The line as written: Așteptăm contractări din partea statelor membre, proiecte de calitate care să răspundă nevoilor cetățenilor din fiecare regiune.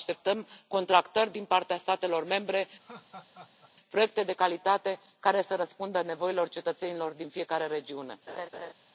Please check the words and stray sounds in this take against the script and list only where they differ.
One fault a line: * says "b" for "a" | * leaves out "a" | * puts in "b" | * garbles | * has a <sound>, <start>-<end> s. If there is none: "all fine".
* has a laugh, 2.8-3.7 s
* has a laugh, 8.3-8.7 s